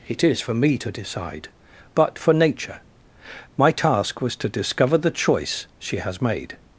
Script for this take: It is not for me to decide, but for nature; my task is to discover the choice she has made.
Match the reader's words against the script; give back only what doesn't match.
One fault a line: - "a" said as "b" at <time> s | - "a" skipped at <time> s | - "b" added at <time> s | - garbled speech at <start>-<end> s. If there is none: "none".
- "not" skipped at 0.4 s
- "is" said as "was" at 4.2 s